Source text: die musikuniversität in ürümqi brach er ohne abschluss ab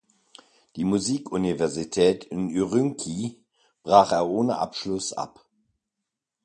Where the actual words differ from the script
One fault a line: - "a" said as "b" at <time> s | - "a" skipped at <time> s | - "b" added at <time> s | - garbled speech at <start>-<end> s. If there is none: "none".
none